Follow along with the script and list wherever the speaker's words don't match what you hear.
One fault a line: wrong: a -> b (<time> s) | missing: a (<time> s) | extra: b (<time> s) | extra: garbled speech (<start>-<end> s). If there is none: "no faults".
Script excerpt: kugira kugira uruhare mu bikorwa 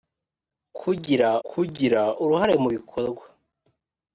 no faults